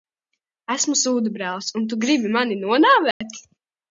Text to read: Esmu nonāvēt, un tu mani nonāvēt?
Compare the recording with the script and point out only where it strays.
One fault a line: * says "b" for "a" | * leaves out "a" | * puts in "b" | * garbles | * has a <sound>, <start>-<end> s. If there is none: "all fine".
* says "sūdabrālis" for "nonāvēt"
* puts in "gribi"
* has a dropout, 3.1-3.2 s